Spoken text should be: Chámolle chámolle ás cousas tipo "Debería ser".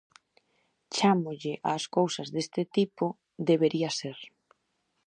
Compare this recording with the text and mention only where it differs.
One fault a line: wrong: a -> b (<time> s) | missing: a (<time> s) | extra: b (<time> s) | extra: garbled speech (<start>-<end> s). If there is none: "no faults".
missing: chámolle (1.5 s)
extra: deste (2.4 s)